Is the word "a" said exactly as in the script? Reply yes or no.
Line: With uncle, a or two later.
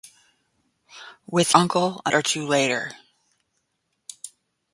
yes